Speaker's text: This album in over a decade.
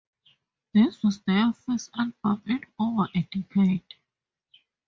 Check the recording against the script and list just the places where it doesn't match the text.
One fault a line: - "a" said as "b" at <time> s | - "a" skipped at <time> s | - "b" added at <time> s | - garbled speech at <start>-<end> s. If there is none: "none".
- "was their first" added at 1.0 s